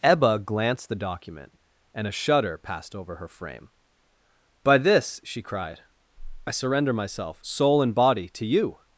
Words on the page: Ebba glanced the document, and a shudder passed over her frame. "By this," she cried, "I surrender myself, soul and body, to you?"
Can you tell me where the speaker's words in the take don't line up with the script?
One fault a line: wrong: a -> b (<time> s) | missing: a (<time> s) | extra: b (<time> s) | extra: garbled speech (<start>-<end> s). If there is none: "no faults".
no faults